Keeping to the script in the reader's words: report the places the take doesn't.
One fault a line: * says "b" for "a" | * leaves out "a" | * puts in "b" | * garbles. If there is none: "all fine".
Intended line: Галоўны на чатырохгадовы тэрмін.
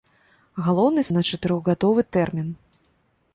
all fine